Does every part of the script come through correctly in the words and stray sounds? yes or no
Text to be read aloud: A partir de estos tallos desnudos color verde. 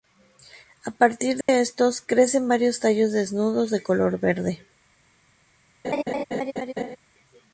no